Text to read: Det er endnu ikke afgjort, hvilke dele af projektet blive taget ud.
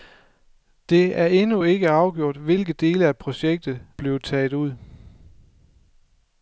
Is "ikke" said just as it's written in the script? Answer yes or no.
yes